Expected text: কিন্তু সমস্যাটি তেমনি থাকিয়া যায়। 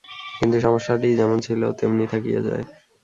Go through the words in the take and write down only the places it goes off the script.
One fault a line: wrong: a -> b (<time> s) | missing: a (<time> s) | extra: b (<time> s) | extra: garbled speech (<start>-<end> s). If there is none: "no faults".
extra: যেমন ছিল (1.2 s)